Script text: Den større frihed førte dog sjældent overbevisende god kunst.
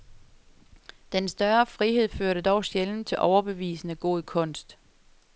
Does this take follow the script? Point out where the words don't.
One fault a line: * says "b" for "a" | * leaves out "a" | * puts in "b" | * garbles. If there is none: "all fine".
* puts in "til"